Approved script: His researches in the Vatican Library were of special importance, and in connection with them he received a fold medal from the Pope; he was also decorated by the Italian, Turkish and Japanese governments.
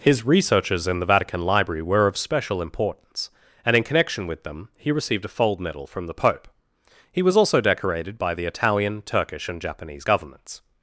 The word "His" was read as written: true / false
true